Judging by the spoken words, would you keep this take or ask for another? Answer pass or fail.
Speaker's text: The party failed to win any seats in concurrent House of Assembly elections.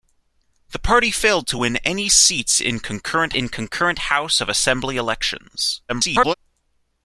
fail